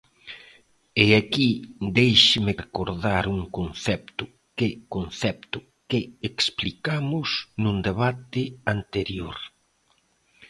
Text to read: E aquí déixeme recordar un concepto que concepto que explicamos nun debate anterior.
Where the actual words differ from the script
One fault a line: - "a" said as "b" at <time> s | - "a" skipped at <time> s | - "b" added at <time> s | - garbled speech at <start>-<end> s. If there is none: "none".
none